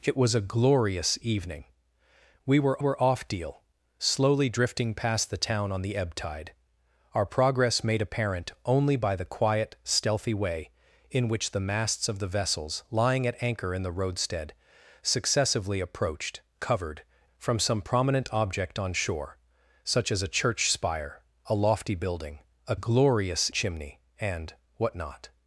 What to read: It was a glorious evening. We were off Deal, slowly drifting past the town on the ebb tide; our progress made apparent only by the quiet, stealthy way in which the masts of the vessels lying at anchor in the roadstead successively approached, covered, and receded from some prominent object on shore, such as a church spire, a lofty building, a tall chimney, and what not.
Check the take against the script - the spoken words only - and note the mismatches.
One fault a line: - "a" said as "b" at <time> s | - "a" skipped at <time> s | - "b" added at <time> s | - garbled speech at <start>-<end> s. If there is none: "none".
- "were" added at 2.8 s
- "and receded" skipped at 17.0 s
- "tall" said as "glorious" at 22.7 s